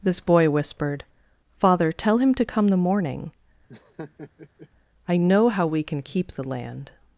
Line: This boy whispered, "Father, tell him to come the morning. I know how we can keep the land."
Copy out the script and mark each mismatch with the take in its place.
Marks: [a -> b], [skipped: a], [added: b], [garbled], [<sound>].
This boy whispered, "Father, tell him to come the morning. [laugh] I know how we can keep the land."